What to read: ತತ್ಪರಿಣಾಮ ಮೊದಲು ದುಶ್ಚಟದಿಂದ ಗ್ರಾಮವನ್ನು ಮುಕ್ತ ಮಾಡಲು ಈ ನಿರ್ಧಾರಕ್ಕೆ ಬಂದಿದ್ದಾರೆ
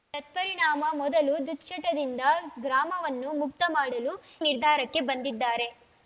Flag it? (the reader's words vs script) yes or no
yes